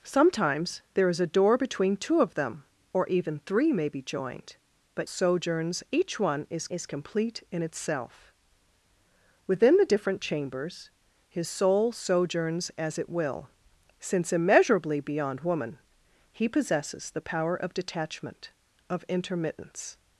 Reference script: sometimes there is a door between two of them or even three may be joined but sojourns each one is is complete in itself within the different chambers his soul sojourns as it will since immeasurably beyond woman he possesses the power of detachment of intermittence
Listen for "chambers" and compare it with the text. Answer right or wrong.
right